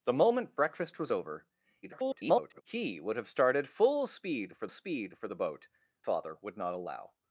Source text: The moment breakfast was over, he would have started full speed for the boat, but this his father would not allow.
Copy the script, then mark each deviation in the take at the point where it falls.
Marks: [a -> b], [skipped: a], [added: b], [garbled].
The moment breakfast was over, [garbled] he would have started full speed for [added: speed for] the boat, [skipped: but this his] father would not allow.